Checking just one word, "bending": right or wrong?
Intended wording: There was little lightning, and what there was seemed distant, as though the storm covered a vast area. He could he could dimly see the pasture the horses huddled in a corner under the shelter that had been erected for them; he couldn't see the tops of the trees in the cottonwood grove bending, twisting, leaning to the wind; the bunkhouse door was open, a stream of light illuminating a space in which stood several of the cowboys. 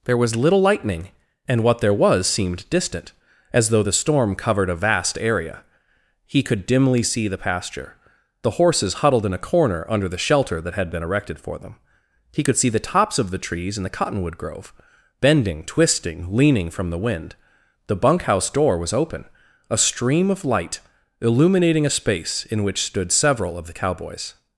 right